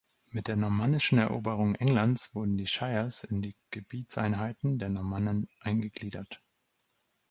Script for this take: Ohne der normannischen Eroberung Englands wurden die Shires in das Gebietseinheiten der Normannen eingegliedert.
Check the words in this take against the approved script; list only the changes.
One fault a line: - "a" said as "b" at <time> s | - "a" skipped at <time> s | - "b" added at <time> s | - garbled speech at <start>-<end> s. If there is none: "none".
- "Ohne" said as "Mit" at 0.3 s
- "das" said as "die" at 3.4 s